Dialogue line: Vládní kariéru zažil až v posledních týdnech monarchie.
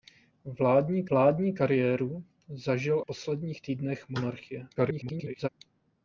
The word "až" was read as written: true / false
false